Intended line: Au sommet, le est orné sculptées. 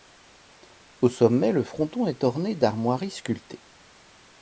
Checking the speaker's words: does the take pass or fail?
fail